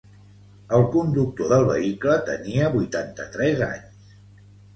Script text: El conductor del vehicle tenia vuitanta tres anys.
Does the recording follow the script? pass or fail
pass